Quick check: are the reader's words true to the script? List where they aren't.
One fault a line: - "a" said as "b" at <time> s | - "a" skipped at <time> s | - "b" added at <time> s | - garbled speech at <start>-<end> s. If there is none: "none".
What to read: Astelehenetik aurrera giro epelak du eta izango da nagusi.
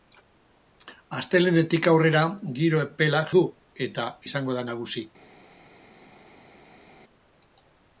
none